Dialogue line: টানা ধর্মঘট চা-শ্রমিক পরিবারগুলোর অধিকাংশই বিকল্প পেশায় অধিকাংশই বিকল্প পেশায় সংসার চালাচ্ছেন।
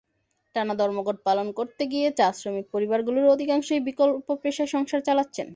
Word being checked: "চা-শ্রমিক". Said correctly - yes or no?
no